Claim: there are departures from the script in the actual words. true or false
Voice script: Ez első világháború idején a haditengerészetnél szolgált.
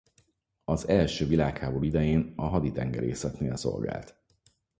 true